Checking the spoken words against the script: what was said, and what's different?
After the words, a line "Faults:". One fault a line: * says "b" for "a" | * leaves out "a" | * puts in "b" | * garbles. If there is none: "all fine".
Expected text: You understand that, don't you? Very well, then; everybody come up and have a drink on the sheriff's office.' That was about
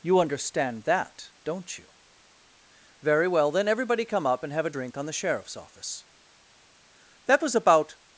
You understand that, don't you? Very well, then; everybody come up and have a drink on the sheriff's office.' That was about
Faults:
all fine